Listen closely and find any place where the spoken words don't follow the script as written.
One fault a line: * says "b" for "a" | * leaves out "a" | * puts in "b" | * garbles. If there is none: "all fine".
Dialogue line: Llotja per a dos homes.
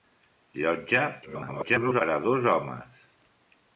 * garbles